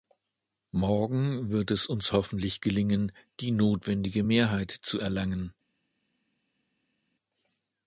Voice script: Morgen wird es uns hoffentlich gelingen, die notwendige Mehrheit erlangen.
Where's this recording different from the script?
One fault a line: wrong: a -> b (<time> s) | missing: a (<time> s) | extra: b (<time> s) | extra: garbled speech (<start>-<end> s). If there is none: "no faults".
extra: zu (4.7 s)